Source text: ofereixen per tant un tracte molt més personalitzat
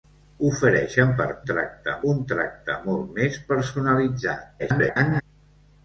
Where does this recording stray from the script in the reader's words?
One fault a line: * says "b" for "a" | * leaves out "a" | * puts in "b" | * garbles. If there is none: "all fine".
* says "tracte" for "tant"
* garbles